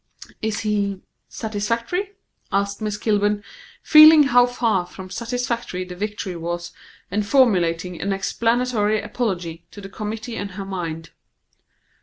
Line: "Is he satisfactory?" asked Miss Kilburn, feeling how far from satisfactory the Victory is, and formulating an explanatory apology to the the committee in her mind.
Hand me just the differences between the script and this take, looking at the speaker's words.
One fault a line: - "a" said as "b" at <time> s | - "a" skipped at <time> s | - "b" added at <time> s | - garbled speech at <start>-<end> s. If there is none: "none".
- "is" said as "was" at 6.3 s
- "the" skipped at 9.9 s